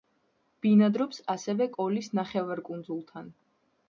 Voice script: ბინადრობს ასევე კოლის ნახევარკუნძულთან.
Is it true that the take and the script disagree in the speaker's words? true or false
false